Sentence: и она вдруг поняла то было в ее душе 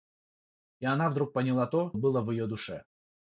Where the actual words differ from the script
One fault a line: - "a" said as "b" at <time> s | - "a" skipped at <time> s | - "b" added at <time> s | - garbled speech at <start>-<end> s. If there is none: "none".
none